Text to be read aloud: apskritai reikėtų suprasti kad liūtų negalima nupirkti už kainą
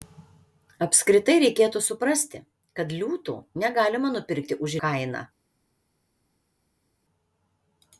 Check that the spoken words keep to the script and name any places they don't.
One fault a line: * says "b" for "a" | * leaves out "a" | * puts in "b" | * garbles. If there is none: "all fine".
all fine